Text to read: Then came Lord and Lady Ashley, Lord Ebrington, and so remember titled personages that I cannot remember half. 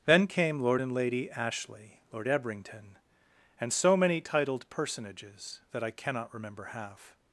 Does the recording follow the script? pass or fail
fail